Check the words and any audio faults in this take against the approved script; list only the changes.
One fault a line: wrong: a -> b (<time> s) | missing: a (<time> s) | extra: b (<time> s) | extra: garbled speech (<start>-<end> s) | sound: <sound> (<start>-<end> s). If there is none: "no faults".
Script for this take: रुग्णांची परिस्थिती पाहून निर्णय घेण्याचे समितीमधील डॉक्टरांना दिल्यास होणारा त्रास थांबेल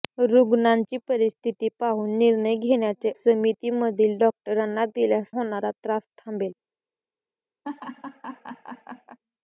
sound: laugh (7.6-9.2 s)